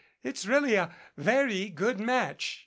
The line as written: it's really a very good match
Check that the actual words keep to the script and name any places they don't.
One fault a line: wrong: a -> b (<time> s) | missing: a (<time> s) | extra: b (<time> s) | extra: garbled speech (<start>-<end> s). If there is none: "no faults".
no faults